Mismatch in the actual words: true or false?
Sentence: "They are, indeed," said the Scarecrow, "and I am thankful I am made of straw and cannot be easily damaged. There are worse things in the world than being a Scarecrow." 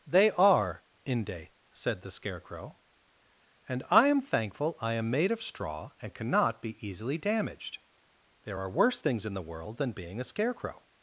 true